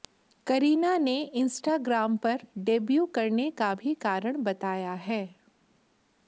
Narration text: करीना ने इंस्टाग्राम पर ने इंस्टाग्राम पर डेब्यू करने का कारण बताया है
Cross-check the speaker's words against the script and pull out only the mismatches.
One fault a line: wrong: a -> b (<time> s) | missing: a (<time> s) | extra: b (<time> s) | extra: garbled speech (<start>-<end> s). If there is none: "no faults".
missing: ने इंस्टाग्राम पर (2.5 s)
extra: भी (3.7 s)